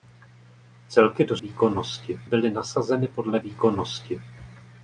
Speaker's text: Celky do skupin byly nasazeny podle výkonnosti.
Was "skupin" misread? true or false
true